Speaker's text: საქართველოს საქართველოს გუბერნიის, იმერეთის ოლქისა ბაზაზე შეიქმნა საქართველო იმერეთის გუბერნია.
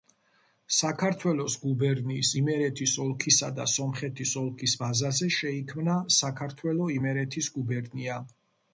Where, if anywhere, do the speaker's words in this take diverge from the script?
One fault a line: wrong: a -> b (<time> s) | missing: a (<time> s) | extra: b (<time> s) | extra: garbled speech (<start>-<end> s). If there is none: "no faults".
missing: საქართველოს (1.6 s)
extra: და სომხეთის ოლქის (3.6 s)